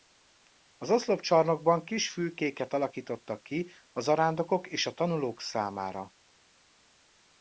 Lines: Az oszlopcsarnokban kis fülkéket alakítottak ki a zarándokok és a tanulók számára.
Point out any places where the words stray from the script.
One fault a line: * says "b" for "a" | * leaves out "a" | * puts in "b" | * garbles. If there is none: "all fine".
all fine